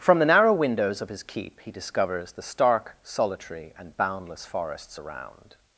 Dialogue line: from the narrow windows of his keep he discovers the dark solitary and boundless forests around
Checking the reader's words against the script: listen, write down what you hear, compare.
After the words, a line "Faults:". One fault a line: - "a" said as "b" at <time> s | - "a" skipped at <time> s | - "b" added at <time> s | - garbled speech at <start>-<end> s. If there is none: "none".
from the narrow windows of his keep he discovers the stark solitary and boundless forests around
Faults:
- "dark" said as "stark" at 2.4 s